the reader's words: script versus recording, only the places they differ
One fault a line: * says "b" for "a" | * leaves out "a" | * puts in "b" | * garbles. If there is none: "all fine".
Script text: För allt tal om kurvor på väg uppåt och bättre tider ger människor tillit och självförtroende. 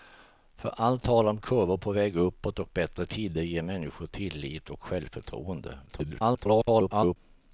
* garbles